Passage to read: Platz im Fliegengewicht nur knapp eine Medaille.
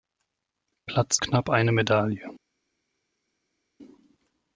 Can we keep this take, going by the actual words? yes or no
no